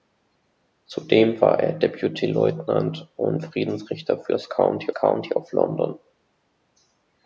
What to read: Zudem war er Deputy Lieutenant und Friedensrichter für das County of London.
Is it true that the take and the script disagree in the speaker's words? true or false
true